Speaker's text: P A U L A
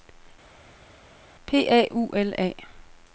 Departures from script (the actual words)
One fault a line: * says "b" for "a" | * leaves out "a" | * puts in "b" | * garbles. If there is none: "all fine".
all fine